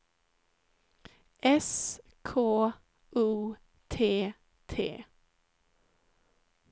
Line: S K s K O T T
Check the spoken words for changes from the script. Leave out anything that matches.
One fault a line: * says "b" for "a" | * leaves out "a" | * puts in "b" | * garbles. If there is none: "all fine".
* leaves out "s K"